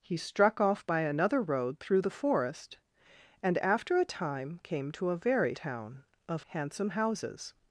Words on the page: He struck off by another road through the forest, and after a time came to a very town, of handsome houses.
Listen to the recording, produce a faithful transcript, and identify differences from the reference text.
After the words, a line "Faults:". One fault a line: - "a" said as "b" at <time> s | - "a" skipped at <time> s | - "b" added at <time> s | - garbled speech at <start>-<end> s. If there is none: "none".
He struck off by another road through the forest, and after a time came to a very town, of handsome houses.
Faults:
none